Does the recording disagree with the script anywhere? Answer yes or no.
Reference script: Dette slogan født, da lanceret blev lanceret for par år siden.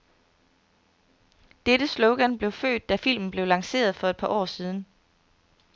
yes